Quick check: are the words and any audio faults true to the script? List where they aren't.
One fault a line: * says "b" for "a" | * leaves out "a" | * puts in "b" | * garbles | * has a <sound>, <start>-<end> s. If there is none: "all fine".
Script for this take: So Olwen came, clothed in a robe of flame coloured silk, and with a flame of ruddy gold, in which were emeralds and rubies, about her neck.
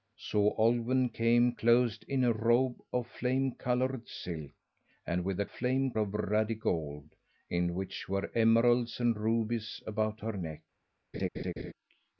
* has a laugh, 11.1-11.7 s